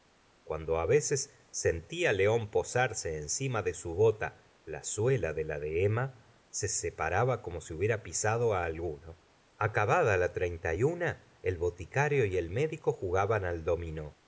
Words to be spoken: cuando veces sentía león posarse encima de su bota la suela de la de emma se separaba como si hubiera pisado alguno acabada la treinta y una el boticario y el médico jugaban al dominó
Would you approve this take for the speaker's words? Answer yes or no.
yes